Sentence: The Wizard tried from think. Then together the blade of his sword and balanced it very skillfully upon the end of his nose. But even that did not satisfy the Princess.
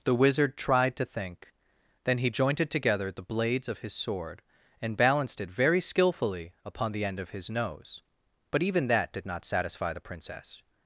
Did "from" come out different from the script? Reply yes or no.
yes